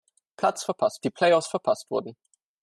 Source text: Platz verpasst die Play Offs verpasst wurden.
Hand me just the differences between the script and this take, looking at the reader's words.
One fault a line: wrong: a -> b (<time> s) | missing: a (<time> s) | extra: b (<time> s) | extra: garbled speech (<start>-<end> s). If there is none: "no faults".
no faults